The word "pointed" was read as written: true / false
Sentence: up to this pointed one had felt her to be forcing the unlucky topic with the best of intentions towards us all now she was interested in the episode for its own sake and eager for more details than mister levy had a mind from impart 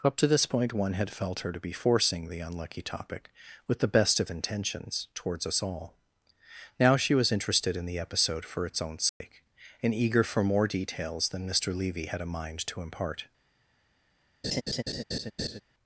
false